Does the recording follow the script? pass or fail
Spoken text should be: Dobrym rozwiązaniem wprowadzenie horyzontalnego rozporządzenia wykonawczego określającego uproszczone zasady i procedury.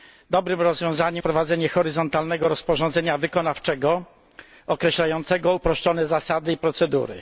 pass